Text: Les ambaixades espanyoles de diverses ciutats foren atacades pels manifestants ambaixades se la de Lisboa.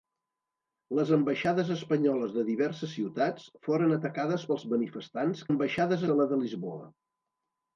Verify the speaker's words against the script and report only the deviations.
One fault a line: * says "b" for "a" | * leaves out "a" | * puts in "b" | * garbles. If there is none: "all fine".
all fine